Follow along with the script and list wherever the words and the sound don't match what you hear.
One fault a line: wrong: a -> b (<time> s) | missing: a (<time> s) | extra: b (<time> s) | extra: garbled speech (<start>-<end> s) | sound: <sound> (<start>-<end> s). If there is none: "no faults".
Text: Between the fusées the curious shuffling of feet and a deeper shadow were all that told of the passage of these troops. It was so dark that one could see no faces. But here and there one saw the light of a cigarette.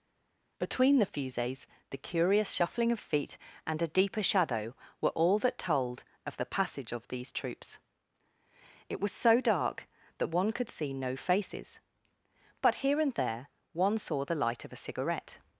no faults